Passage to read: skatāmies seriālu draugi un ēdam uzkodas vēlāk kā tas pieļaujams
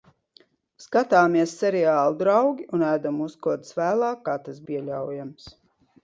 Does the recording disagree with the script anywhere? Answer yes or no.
no